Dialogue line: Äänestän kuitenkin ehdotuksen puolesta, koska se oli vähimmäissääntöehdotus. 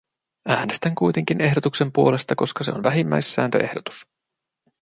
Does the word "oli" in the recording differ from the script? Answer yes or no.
yes